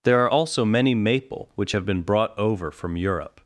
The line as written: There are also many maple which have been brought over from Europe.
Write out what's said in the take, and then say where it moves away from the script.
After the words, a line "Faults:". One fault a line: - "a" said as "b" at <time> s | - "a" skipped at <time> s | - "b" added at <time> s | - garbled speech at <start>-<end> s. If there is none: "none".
There are also many maple which have been brought over from Europe.
Faults:
none